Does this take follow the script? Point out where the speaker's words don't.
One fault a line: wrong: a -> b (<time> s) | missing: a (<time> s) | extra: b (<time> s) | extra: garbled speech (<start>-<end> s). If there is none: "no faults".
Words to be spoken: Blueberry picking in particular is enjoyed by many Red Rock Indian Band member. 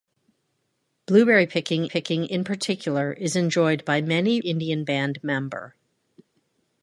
extra: picking (1.8 s)
missing: Red Rock (4.4 s)